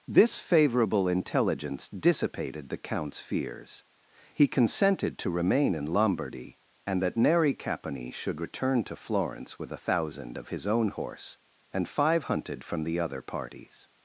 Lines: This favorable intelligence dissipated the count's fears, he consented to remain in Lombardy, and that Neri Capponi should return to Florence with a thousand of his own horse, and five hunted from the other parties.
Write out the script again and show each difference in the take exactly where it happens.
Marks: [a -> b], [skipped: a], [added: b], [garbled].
This favorable intelligence dissipated the count's fears, he consented to remain in Lombardy, and that Neri Capponi should return to Florence with a thousand of his own horse, and five hunted from the other parties.